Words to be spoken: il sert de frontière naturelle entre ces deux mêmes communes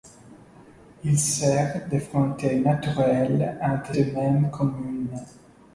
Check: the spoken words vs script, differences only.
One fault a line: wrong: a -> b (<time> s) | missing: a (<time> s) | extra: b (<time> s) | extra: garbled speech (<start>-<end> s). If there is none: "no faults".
missing: ces (4.0 s)